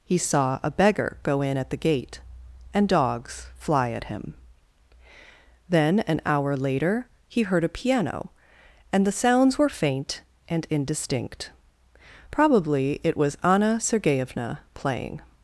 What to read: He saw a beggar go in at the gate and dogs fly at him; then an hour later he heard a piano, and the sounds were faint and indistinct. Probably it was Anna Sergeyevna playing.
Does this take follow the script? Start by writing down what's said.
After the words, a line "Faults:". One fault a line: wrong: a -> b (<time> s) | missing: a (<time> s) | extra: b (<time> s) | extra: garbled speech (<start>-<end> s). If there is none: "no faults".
He saw a beggar go in at the gate and dogs fly at him; then an hour later he heard a piano, and the sounds were faint and indistinct. Probably it was Anna Sergeyevna playing.
Faults:
no faults